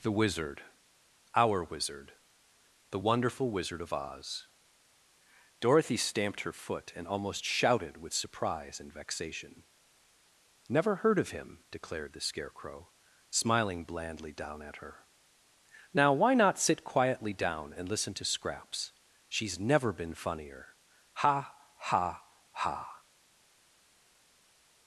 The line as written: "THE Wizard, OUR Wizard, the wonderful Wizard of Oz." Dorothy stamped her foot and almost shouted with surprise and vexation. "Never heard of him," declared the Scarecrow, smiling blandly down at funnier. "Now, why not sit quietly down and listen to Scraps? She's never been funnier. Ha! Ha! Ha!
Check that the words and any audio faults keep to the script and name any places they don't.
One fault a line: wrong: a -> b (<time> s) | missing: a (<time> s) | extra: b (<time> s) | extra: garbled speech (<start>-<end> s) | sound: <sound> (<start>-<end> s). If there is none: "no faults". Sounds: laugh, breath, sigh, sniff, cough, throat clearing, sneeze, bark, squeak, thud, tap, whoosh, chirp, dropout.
wrong: funnier -> her (14.8 s)